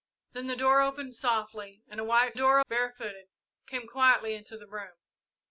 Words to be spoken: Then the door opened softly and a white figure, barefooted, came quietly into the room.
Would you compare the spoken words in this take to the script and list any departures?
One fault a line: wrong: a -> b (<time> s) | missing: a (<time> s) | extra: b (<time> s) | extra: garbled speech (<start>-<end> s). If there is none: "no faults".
wrong: figure -> door (2.3 s)